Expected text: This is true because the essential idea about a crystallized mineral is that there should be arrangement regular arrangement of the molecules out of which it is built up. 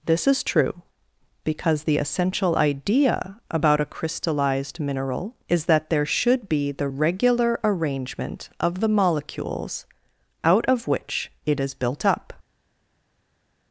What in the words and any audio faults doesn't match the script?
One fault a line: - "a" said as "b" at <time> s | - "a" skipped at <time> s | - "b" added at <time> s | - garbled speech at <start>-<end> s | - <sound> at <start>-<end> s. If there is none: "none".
- "arrangement" said as "the" at 6.7 s